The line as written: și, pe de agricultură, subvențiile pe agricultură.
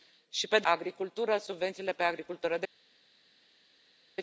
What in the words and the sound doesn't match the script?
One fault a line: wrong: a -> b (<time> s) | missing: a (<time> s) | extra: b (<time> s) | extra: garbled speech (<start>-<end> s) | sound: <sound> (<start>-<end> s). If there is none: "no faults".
no faults